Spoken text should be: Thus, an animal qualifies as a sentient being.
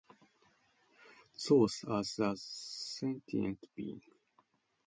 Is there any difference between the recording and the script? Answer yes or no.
yes